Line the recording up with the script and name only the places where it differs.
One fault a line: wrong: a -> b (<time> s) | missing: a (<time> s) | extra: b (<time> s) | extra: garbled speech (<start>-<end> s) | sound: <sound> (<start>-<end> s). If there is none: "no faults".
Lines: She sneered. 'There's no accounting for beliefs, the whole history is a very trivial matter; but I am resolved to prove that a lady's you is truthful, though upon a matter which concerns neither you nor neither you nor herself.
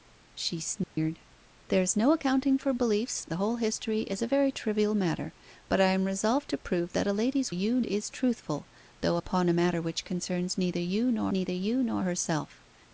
sound: dropout (0.8-1.0 s)